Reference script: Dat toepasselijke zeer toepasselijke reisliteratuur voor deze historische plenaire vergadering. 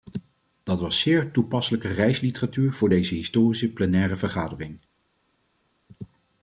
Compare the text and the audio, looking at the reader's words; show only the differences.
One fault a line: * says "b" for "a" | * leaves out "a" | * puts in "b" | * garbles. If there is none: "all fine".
* says "was" for "toepasselijke"